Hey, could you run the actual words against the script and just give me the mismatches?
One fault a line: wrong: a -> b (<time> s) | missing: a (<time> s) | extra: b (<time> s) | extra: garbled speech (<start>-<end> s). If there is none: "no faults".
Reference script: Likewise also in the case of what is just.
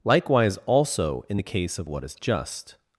no faults